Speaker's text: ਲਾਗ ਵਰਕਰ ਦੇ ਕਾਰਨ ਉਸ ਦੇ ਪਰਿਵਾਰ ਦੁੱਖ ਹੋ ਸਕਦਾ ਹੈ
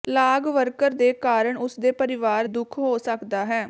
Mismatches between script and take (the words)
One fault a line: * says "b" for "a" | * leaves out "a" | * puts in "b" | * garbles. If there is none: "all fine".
all fine